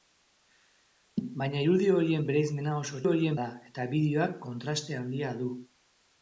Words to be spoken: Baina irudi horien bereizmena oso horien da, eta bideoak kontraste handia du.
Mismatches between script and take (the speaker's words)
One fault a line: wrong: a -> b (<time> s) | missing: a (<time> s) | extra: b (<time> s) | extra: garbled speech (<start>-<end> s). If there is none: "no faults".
no faults